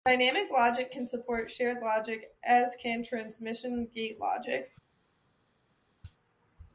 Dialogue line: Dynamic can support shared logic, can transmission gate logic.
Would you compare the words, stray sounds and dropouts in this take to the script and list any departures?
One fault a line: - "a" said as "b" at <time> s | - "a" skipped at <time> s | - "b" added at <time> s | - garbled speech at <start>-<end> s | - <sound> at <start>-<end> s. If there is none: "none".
- "logic" added at 0.5 s
- "as" added at 2.4 s